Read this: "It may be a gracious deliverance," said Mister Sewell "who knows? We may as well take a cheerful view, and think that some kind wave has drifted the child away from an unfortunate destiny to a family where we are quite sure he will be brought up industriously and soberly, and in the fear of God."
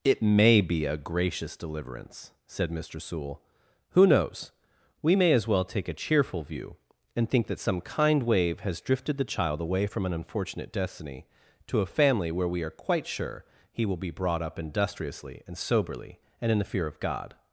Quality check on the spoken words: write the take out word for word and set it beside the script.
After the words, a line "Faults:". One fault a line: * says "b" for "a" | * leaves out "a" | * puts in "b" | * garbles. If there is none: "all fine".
"It may be a gracious deliverance," said Mister Sewell "who knows? We may as well take a cheerful view, and think that some kind wave has drifted the child away from an unfortunate destiny to a family where we are quite sure he will be brought up industriously and soberly, and in the fear of God."
Faults:
all fine